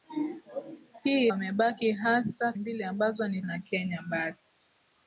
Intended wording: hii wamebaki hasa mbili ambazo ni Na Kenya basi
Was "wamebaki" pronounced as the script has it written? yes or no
yes